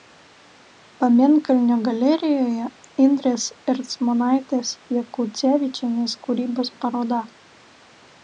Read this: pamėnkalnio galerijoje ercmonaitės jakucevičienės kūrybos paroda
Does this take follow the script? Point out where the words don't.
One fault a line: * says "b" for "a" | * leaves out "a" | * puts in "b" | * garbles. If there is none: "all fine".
* puts in "indrės"